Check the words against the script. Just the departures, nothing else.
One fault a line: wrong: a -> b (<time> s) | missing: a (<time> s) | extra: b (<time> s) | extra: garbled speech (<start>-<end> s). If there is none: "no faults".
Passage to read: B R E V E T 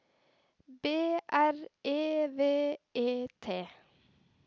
no faults